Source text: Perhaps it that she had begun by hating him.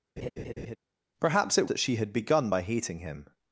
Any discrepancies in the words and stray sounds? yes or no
yes